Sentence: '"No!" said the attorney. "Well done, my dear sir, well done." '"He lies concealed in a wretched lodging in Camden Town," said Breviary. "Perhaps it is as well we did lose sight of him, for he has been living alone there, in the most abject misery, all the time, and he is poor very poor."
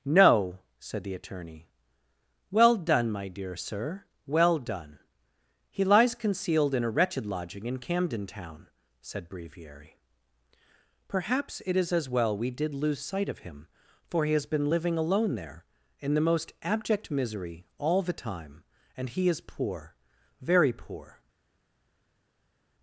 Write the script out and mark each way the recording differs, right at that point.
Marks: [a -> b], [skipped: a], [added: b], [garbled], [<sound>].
'"No!" said the attorney. "Well done, my dear sir, well done." '"He lies concealed in a wretched lodging in Camden Town," said Breviary. "Perhaps it is as well we did lose sight of him, for he has been living alone there, in the most abject misery, all the time, and he is poor very poor."